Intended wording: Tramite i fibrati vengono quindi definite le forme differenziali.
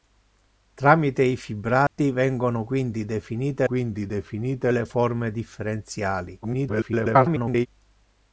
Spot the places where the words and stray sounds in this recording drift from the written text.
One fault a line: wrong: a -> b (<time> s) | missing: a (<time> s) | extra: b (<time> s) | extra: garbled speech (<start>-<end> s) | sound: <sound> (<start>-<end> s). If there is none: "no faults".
sound: dropout (1.9-2.0 s)
extra: quindi definite (3.6 s)
extra: garbled speech (6.4-7.7 s)